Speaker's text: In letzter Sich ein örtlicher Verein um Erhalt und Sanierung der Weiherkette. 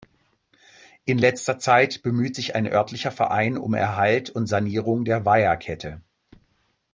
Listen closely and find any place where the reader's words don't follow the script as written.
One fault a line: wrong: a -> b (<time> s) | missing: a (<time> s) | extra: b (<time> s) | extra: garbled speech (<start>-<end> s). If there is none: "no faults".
extra: Zeit bemüht (1.6 s)